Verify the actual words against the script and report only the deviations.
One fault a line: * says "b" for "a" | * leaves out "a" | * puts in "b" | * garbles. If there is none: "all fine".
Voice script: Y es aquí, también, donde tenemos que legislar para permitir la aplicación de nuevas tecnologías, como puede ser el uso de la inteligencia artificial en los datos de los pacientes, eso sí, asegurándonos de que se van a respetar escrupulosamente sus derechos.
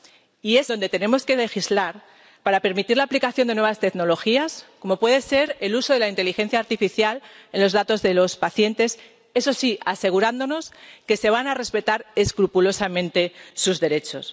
* leaves out "aquí también"